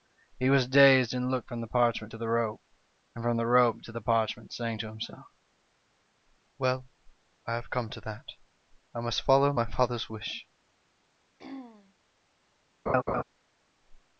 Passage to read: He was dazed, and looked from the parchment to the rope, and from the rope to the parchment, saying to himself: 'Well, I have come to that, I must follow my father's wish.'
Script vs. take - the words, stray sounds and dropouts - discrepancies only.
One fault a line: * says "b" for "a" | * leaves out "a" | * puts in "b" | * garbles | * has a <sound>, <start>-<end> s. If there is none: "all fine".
* has a throat clearing, 11.4-11.9 s
* has a laugh, 12.9-13.2 s